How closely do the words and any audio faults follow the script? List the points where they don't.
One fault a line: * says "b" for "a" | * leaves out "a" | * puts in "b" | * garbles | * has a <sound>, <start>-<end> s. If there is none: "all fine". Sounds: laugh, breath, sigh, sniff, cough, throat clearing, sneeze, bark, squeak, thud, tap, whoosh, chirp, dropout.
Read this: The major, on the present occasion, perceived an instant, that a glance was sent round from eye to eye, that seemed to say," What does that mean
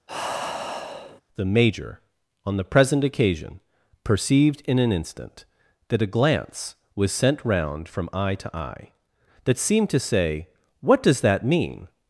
* has a sigh, 0.1-1.2 s
* puts in "in"